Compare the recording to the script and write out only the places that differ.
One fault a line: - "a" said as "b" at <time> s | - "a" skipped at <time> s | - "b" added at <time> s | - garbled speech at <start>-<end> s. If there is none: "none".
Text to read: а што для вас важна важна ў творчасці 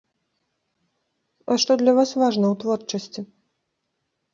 - "важна" skipped at 2.5 s